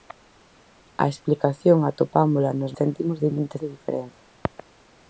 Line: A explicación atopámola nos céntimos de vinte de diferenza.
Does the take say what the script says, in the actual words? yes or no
yes